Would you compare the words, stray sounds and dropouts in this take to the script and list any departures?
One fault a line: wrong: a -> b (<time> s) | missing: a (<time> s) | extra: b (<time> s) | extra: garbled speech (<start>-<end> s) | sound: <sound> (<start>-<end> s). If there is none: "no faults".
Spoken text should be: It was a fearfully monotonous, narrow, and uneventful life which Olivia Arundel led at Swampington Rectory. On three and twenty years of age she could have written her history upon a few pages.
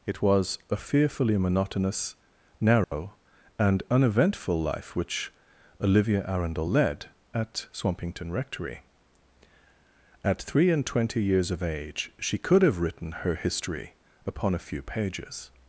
sound: dropout (2.8-2.9 s)
wrong: On -> At (10.2 s)